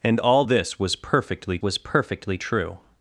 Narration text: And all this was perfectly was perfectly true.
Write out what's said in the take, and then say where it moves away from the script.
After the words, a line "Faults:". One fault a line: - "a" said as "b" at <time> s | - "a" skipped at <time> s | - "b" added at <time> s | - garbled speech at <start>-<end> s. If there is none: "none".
And all this was perfectly was perfectly true.
Faults:
none